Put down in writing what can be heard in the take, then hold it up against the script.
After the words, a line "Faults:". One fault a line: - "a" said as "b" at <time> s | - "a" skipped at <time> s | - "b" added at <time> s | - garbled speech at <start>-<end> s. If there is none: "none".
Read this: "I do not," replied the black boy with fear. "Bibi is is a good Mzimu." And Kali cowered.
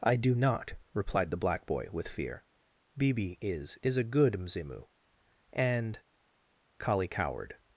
"I do not," replied the black boy with fear. "Bibi is is a good Mzimu." And Kali cowered.
Faults:
none